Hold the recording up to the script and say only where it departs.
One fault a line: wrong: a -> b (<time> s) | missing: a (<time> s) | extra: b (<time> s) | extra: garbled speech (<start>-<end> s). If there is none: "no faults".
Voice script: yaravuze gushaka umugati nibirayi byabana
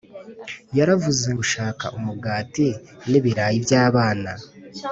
no faults